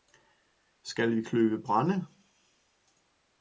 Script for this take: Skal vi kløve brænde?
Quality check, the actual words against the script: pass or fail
pass